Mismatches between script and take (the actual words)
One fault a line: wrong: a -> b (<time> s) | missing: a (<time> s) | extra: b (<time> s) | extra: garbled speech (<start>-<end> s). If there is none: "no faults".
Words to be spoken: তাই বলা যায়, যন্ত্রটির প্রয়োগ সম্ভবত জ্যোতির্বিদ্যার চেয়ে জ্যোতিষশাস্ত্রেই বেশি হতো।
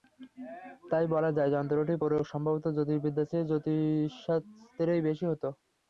no faults